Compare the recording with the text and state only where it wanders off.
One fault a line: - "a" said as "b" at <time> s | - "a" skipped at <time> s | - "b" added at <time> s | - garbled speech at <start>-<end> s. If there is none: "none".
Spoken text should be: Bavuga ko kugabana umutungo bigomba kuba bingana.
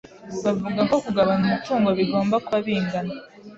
none